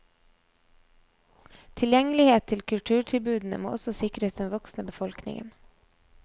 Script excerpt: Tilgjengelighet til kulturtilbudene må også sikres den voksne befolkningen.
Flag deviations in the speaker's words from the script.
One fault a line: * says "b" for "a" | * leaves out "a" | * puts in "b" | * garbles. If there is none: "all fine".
all fine